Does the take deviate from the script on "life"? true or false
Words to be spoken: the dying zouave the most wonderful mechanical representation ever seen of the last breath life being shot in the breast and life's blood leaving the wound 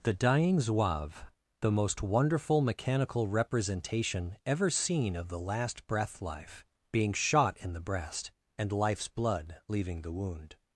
false